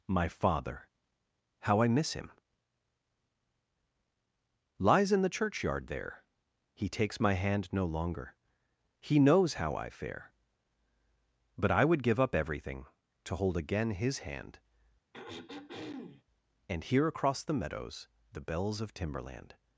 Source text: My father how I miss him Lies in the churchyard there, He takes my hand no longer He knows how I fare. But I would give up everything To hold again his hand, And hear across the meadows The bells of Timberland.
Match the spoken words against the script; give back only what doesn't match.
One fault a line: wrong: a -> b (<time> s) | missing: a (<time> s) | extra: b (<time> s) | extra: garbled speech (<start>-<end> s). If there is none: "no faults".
no faults